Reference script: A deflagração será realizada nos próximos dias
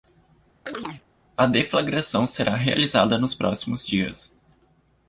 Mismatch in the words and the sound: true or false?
true